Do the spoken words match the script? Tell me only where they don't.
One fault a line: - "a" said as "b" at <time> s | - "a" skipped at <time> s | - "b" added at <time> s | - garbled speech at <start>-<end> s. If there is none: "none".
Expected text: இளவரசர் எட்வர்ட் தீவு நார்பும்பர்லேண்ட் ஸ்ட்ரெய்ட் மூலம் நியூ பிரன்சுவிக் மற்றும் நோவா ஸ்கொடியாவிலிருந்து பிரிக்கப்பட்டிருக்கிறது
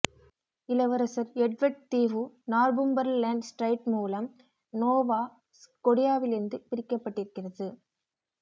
- "நியூ பிரன்சுவிக் மற்றும்" skipped at 4.3 s